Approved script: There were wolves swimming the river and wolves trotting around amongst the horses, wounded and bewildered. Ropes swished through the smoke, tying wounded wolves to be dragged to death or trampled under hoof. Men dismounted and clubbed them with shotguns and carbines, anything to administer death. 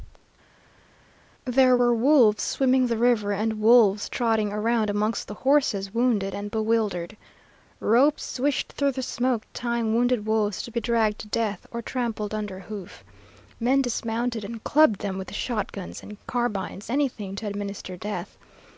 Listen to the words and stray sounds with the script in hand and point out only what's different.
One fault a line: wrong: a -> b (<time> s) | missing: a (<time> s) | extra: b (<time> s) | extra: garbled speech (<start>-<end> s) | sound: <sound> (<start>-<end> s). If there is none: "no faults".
no faults